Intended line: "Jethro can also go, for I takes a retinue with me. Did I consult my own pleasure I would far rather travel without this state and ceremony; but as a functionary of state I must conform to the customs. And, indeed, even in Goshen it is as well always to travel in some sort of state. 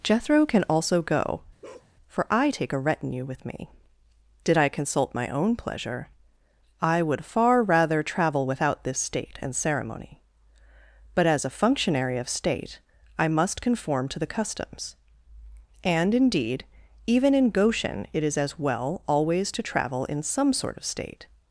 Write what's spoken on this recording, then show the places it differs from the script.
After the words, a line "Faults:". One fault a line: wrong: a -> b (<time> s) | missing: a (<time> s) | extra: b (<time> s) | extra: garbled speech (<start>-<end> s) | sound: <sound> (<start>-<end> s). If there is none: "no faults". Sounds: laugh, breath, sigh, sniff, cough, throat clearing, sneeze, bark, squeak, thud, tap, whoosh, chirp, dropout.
"Jethro can also go, for I take a retinue with me. Did I consult my own pleasure I would far rather travel without this state and ceremony; but as a functionary of state I must conform to the customs. And, indeed, even in Goshen it is as well always to travel in some sort of state.
Faults:
sound: bark (1.6-1.9 s)
wrong: takes -> take (2.5 s)